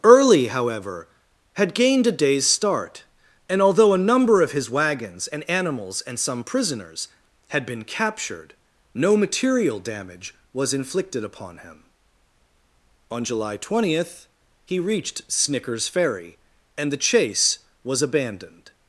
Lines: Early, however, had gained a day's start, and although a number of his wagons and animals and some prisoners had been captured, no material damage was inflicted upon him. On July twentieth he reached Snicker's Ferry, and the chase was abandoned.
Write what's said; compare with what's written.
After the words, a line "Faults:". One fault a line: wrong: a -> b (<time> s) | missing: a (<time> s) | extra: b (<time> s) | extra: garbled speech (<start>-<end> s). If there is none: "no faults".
Early, however, had gained a day's start, and although a number of his wagons and animals and some prisoners had been captured, no material damage was inflicted upon him. On July twentieth he reached Snicker's Ferry, and the chase was abandoned.
Faults:
no faults